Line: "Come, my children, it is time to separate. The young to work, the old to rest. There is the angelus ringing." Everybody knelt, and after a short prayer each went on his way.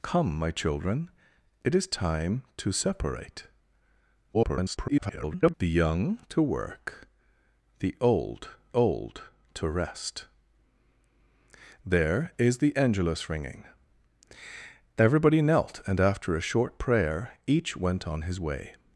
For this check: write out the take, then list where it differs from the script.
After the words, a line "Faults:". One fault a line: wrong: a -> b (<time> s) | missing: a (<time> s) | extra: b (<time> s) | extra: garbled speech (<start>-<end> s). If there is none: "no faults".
"Come, my children, it is time to separate. [garbled] The young to work, the old old to rest. There is the angelus ringing." Everybody knelt, and after a short prayer each went on his way.
Faults:
extra: garbled speech (4.3-5.5 s)
extra: old (8.7 s)